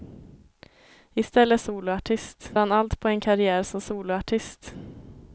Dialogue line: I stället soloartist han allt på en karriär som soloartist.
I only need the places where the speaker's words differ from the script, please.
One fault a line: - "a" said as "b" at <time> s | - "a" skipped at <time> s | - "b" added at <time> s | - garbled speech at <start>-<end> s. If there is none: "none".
none